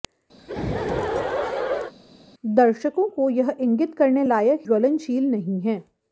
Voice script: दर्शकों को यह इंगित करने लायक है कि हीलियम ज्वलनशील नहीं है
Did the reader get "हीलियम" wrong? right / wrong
wrong